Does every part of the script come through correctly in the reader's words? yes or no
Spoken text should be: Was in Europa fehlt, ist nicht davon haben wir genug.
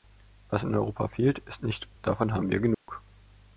yes